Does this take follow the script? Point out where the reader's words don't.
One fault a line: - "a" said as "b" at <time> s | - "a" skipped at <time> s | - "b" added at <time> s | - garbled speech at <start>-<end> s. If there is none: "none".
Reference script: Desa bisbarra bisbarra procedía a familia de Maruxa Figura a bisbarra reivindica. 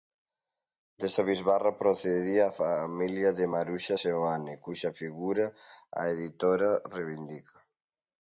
- "bisbarra" skipped at 1.7 s
- "Seoane cuxa" added at 4.0 s
- "bisbarra" said as "editora" at 6.1 s